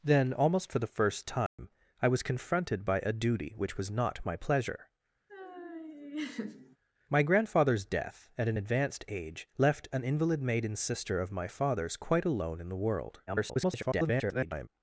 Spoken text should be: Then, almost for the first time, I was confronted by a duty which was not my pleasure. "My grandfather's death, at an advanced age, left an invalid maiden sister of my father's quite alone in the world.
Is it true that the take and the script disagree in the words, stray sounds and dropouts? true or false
true